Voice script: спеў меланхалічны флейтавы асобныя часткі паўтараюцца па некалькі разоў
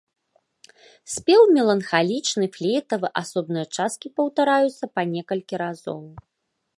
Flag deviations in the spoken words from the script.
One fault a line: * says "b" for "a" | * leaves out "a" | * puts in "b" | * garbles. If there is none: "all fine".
all fine